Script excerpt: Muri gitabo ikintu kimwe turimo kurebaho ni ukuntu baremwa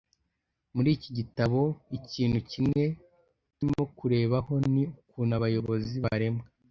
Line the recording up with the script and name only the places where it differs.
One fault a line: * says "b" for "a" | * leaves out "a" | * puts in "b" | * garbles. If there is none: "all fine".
* puts in "iki"
* puts in "abayobozi"